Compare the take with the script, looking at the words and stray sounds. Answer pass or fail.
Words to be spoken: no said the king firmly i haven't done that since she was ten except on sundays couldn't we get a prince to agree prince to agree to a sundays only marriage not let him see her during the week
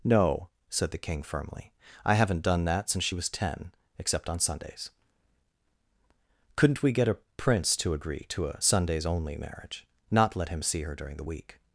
fail